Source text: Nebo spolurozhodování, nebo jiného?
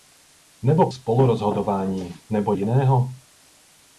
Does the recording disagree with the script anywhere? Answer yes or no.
no